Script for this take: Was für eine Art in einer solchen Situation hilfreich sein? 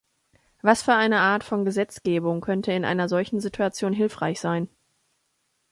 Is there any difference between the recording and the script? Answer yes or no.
yes